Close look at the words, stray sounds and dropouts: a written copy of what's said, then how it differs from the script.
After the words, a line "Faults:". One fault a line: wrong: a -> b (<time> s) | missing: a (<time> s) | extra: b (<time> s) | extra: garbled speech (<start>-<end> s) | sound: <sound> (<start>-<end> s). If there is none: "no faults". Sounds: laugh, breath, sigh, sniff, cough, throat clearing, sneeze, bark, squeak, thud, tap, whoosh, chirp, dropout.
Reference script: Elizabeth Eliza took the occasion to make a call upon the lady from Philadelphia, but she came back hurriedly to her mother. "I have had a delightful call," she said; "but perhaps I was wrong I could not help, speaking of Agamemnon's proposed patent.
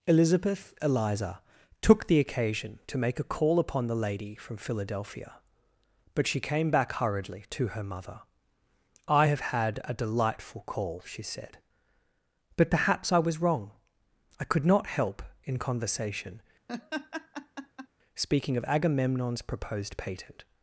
Elizabeth Eliza took the occasion to make a call upon the lady from Philadelphia, but she came back hurriedly to her mother. "I have had a delightful call," she said; "but perhaps I was wrong I could not help, in conversation, speaking of Agamemnon's proposed patent.
Faults:
extra: in conversation (15.4 s)
sound: laugh (16.7-17.9 s)